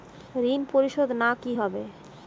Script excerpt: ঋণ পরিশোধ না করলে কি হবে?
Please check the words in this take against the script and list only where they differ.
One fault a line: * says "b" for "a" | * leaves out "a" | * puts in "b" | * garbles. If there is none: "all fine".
* leaves out "করলে"